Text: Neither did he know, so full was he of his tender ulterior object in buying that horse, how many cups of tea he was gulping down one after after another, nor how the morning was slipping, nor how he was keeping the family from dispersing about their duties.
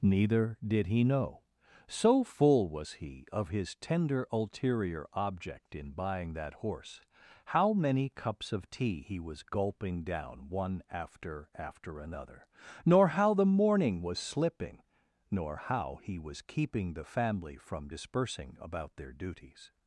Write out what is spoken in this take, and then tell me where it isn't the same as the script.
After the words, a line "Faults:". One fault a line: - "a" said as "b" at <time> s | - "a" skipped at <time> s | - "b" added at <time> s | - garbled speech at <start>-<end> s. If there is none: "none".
Neither did he know, so full was he of his tender ulterior object in buying that horse, how many cups of tea he was gulping down one after after another, nor how the morning was slipping, nor how he was keeping the family from dispersing about their duties.
Faults:
none